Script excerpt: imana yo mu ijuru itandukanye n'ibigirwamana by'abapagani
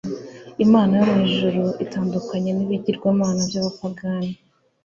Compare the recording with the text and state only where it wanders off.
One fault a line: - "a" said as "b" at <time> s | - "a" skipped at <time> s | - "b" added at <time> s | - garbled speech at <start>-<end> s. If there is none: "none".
none